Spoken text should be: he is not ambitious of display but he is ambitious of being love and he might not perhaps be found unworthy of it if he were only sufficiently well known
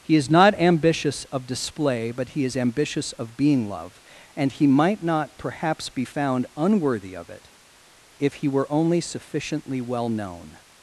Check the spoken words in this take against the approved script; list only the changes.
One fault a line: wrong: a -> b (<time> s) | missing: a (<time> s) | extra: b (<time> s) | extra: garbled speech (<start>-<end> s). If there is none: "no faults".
no faults